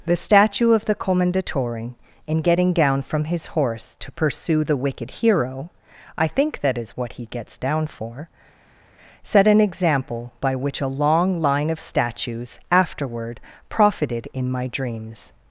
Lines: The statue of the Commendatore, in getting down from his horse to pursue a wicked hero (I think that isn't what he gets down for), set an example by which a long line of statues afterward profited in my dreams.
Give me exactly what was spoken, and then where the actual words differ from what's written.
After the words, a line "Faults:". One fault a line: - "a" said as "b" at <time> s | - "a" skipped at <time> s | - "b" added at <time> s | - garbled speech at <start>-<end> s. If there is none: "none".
The statue of the Commendatore, in getting down from his horse to pursue the wicked hero (I think that is what he gets down for), set an example by which a long line of statues afterward profited in my dreams.
Faults:
- "a" said as "the" at 4.6 s
- "isn't" said as "is" at 6.8 s